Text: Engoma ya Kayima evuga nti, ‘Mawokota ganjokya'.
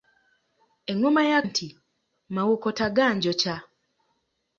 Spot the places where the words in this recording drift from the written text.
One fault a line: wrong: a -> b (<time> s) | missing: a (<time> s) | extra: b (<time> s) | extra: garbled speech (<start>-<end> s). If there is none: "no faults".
missing: Kayima evuga (1.4 s)